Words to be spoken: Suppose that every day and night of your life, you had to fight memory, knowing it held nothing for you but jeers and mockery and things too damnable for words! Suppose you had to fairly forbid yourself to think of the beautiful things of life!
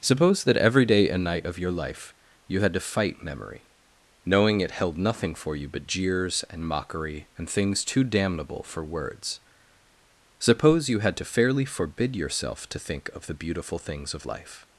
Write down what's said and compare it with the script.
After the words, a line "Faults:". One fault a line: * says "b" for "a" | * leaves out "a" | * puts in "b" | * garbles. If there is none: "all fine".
Suppose that every day and night of your life, you had to fight memory, knowing it held nothing for you but jeers and mockery and things too damnable for words! Suppose you had to fairly forbid yourself to think of the beautiful things of life!
Faults:
all fine